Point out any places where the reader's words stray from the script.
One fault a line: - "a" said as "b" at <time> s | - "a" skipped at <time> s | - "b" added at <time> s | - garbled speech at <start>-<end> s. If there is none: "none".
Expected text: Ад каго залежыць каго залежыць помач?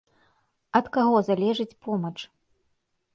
- "каго залежыць" skipped at 1.8 s